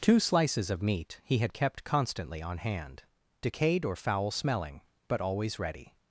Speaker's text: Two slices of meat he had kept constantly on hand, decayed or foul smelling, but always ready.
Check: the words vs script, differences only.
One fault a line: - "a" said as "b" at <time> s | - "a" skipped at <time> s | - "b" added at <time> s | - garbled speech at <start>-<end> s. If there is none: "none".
none